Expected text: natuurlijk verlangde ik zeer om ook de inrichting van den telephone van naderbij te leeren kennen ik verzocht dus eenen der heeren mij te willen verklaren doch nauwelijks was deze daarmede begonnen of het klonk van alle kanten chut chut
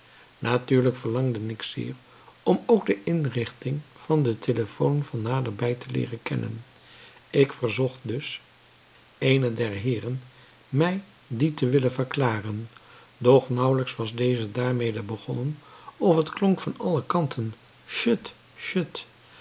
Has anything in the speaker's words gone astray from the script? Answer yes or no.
yes